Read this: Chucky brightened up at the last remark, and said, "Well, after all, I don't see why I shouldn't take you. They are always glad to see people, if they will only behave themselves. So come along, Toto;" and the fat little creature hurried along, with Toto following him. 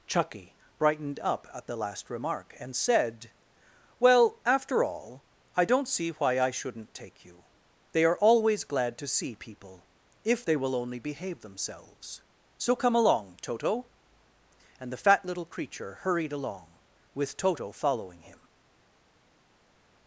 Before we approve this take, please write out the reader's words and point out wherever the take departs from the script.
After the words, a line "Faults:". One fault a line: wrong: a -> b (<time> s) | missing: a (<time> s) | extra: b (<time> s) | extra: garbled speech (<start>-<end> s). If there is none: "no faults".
Chucky brightened up at the last remark, and said, "Well, after all, I don't see why I shouldn't take you. They are always glad to see people, if they will only behave themselves. So come along, Toto;" and the fat little creature hurried along, with Toto following him.
Faults:
no faults